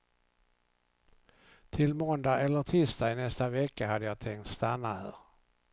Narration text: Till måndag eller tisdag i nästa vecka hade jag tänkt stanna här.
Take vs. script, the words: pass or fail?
pass